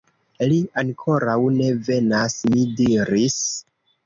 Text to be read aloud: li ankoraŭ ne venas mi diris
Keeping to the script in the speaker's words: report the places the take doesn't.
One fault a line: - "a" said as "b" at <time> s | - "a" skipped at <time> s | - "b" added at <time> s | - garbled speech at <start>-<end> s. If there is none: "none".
none